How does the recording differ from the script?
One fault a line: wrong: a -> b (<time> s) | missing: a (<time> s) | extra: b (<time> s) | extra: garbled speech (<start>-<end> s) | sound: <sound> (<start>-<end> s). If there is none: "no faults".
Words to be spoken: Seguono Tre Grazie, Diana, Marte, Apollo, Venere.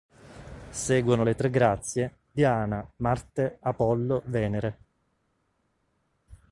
extra: le (1.2 s)